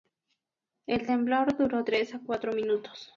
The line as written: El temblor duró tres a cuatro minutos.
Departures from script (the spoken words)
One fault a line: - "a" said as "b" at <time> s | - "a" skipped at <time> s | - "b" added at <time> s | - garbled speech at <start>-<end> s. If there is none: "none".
none